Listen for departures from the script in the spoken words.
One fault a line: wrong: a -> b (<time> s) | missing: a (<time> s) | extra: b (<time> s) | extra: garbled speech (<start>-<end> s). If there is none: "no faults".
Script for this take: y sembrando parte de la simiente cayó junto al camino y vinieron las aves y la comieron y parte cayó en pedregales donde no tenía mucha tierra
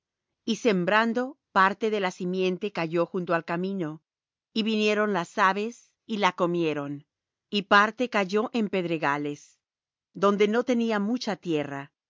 no faults